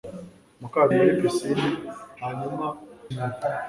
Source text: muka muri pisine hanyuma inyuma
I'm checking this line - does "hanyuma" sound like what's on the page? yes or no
yes